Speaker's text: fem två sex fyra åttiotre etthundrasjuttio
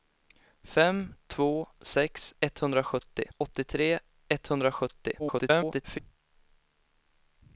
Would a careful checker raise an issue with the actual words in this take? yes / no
yes